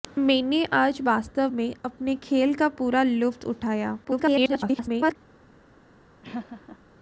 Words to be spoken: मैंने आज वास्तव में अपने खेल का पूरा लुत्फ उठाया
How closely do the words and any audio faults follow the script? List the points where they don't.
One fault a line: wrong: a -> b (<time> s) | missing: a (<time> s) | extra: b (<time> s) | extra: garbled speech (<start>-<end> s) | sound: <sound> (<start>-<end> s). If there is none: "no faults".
extra: garbled speech (4.0-5.2 s)
sound: laugh (6.2-6.8 s)